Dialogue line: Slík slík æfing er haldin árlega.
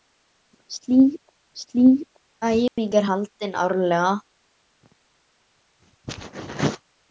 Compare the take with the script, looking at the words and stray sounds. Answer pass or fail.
fail